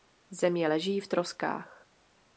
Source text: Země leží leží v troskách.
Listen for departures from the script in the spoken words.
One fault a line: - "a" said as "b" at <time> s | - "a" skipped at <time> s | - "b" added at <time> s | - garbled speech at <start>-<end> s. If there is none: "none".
- "leží" skipped at 1.0 s